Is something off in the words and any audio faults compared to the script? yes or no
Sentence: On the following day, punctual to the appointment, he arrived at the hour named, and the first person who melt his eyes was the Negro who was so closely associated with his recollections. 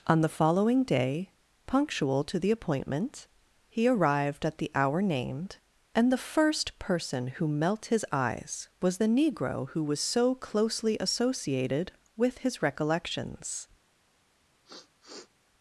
yes